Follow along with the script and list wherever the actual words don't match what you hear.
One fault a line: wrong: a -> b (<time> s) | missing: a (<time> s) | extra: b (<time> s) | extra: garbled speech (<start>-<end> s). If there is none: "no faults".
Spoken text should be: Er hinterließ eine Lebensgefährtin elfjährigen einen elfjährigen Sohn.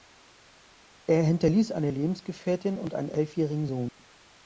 wrong: elfjährigen -> und (2.8 s)